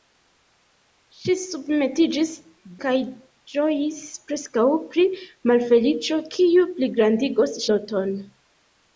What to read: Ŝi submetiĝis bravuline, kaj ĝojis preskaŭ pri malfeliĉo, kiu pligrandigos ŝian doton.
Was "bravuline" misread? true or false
true